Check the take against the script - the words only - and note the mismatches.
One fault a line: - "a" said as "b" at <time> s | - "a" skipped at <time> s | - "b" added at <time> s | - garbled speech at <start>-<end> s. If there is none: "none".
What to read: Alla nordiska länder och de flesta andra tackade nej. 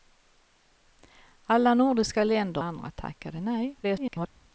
- "och de flesta" skipped at 2.6 s
- garbled speech at 3.8-4.3 s